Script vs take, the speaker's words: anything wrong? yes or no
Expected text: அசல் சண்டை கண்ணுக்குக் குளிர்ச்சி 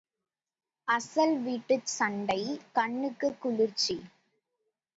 yes